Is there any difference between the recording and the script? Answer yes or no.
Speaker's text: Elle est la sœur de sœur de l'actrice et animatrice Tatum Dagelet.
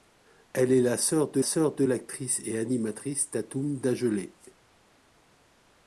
no